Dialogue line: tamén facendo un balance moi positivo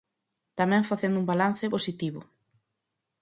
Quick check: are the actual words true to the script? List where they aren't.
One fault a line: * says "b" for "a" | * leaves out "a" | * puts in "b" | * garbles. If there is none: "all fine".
* leaves out "moi"